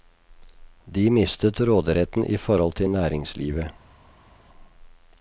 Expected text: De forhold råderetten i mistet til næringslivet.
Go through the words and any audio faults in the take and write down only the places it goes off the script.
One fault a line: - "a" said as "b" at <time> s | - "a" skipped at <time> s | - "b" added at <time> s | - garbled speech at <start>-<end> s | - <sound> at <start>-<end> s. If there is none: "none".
- "forhold" said as "mistet" at 1.1 s
- "mistet" said as "forhold" at 2.4 s